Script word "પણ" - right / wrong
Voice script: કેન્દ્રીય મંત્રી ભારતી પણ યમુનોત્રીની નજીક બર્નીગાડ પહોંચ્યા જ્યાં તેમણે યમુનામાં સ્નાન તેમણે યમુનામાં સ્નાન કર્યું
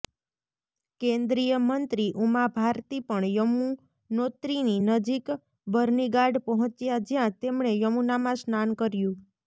right